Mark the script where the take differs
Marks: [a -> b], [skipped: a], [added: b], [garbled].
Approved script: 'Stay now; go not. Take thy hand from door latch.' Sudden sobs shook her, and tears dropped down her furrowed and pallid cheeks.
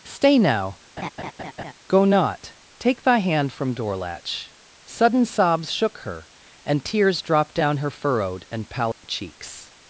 'Stay now; go not. Take thy hand from door latch.' Sudden sobs shook her, and tears dropped down her furrowed and pallid cheeks.